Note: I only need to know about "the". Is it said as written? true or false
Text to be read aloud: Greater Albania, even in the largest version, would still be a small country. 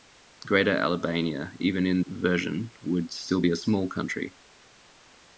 false